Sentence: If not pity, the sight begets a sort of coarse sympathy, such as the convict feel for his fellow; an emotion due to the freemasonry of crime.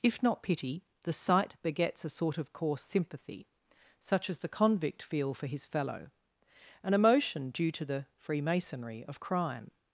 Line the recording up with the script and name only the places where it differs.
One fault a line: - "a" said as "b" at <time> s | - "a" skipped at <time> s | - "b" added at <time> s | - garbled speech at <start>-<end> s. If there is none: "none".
none